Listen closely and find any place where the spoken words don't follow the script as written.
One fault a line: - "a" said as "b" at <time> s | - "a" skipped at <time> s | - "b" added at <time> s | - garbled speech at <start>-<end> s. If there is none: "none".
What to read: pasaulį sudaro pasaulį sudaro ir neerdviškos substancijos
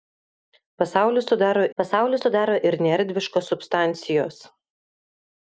none